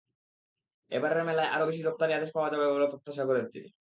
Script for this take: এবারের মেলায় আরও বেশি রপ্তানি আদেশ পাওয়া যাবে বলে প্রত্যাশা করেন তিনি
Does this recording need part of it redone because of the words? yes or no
no